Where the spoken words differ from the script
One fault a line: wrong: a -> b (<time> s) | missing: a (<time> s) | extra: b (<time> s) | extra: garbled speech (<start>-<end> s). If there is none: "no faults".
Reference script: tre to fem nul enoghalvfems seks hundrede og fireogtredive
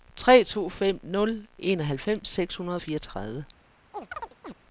no faults